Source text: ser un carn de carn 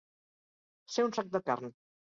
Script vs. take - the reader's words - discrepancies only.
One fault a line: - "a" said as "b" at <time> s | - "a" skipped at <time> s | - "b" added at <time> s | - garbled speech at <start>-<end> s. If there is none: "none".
- "carn" said as "sac" at 1.2 s